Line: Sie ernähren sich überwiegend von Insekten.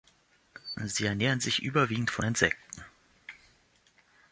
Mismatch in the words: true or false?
false